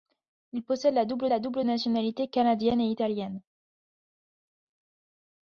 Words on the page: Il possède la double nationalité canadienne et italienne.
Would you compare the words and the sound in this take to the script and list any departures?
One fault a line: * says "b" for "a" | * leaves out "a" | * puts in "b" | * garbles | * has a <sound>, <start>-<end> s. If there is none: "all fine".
* puts in "la double"